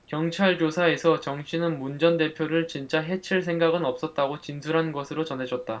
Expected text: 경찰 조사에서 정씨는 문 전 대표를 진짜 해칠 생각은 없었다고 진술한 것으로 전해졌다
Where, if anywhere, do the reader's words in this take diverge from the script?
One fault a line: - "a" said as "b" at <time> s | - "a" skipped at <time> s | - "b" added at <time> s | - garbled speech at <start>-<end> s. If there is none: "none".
none